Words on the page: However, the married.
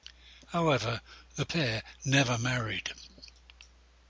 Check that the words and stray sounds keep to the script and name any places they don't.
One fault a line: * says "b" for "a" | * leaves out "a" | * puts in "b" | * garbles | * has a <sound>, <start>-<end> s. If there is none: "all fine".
* puts in "pair never"